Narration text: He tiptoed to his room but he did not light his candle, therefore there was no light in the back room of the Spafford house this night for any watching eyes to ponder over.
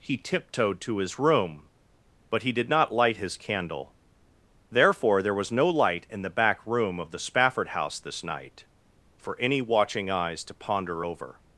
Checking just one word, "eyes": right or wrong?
right